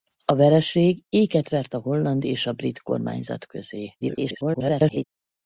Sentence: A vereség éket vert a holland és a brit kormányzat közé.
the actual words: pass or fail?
fail